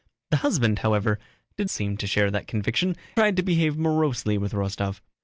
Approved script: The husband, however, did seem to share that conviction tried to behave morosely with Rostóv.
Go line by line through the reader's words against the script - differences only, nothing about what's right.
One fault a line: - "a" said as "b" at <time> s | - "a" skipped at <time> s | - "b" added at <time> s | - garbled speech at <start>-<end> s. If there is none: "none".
none